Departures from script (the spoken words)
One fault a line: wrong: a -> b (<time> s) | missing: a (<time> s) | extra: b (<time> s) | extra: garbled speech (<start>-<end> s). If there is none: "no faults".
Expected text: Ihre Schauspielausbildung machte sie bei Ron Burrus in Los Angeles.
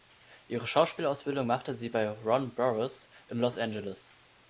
no faults